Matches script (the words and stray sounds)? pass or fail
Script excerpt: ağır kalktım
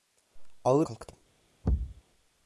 fail